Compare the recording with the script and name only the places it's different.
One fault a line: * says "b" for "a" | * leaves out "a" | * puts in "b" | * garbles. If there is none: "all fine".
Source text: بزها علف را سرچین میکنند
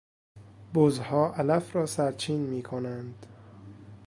all fine